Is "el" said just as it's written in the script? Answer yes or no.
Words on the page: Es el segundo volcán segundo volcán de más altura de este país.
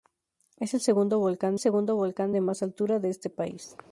yes